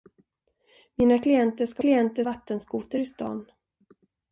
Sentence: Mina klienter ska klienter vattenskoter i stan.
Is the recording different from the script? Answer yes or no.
no